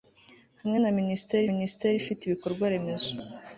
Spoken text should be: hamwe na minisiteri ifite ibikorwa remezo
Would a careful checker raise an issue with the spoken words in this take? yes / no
yes